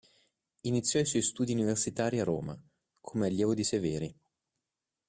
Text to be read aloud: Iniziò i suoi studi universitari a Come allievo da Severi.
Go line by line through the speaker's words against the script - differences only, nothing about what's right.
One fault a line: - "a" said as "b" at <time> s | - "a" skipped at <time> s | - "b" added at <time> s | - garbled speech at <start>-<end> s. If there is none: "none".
- "Roma" added at 2.2 s
- "da" said as "di" at 3.5 s